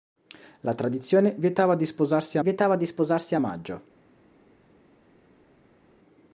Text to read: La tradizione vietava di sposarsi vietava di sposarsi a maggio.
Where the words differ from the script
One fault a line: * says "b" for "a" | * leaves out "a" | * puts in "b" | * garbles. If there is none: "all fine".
all fine